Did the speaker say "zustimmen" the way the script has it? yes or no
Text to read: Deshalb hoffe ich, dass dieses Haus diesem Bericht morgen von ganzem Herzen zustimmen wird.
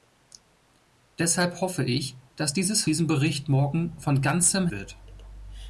no